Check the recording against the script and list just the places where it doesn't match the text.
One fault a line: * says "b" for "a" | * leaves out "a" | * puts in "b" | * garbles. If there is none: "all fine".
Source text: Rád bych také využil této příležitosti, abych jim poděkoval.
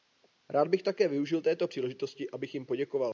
all fine